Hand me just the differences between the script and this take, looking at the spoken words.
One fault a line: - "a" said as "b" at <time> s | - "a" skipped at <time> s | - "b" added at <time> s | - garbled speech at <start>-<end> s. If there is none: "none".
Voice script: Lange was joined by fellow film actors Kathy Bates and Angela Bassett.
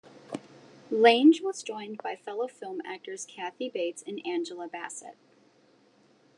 none